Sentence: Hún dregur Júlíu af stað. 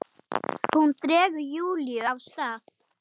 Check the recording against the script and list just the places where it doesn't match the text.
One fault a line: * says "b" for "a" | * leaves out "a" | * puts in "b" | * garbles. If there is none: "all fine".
all fine